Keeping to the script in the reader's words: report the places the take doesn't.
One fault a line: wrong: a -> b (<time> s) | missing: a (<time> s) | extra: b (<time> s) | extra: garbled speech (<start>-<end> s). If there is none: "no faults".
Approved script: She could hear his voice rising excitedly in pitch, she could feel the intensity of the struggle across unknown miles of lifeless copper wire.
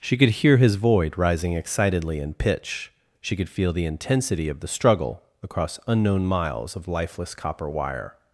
wrong: voice -> void (0.8 s)